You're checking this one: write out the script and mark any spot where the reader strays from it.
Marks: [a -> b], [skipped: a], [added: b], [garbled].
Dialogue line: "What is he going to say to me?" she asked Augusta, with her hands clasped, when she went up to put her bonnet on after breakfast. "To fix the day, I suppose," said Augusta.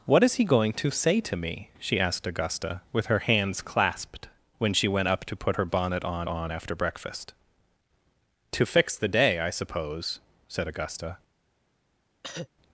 "What is he going to say to me?" she asked Augusta, with her hands clasped, when she went up to put her bonnet on [added: on] after breakfast. "To fix the day, I suppose," said Augusta.